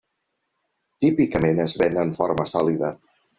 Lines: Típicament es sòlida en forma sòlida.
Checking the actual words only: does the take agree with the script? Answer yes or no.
no